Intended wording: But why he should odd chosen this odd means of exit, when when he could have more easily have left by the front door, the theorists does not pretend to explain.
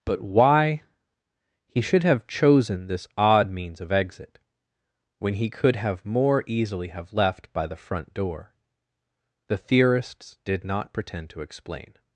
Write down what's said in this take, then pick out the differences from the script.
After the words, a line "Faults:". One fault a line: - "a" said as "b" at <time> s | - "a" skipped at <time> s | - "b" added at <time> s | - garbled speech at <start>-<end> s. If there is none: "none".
But why he should have chosen this odd means of exit, when he could have more easily have left by the front door, the theorists did not pretend to explain.
Faults:
- "odd" said as "have" at 2.0 s
- "when" skipped at 5.3 s
- "does" said as "did" at 10.4 s